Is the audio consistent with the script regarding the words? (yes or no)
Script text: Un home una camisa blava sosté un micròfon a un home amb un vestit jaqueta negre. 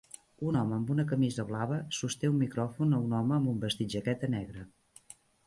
no